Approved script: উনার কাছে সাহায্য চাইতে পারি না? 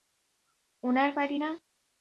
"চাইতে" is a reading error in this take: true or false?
true